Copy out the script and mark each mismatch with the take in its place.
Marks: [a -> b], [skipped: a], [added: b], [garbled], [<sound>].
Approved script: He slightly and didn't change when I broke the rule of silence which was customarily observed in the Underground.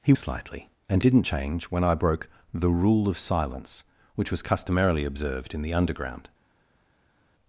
He slightly and didn't change when I broke the rule of silence which was customarily observed in the Underground.